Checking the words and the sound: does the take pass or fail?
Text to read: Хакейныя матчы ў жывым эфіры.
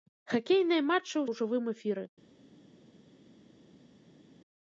pass